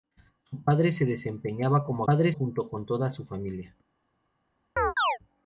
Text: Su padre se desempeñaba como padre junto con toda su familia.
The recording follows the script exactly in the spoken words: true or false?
true